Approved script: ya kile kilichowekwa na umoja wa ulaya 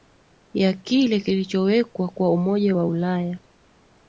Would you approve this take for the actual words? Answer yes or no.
no